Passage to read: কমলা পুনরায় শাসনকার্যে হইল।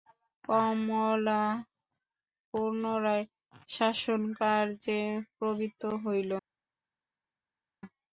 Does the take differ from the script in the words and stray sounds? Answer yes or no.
yes